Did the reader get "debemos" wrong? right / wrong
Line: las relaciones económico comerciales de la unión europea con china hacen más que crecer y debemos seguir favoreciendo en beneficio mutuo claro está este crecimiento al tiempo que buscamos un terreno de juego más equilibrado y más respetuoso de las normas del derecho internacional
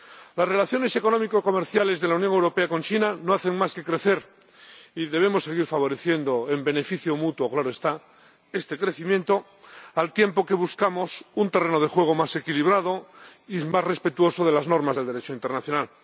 right